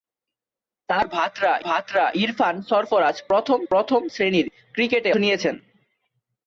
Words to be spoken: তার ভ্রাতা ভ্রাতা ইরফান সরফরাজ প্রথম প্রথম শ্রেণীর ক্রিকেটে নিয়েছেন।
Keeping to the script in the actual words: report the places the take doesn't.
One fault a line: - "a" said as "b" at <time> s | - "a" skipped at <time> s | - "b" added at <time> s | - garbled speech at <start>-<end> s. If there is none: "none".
none